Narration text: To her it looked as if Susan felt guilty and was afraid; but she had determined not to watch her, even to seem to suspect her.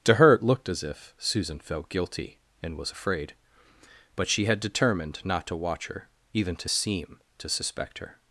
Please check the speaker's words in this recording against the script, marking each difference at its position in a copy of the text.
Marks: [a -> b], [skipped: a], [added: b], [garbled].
To her it looked as if Susan felt guilty and was afraid; but she had determined not to watch her, even to seem to suspect her.